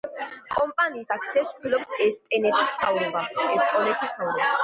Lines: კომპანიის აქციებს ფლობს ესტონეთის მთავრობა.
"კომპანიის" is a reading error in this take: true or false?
false